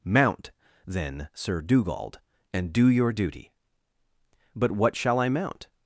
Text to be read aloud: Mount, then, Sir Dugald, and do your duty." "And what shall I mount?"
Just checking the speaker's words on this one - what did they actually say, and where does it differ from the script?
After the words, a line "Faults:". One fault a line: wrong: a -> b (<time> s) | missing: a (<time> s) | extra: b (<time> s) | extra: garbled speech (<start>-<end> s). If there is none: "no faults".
Mount, then, Sir Dugald, and do your duty." "But what shall I mount?"
Faults:
wrong: And -> But (4.5 s)